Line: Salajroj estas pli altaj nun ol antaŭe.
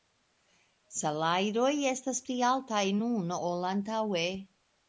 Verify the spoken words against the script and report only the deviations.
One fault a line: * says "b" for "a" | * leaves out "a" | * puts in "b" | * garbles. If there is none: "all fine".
all fine